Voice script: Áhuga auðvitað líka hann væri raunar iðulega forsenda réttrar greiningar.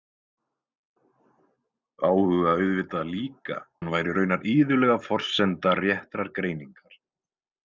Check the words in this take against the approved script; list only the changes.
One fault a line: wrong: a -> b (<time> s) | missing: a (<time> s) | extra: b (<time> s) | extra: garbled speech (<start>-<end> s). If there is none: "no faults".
no faults